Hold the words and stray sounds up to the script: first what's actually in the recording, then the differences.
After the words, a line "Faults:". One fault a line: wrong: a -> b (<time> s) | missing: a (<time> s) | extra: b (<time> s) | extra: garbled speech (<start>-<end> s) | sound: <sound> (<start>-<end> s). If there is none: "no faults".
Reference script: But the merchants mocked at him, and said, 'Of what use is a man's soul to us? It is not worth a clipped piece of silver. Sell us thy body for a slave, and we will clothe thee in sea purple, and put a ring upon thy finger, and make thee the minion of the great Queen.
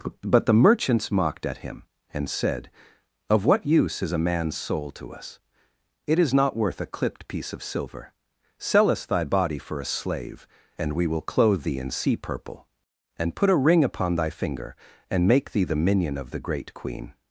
But the merchants mocked at him, and said, 'Of what use is a man's soul to us? It is not worth a clipped piece of silver. Sell us thy body for a slave, and we will clothe thee in sea purple, and put a ring upon thy finger, and make thee the minion of the great Queen.
Faults:
no faults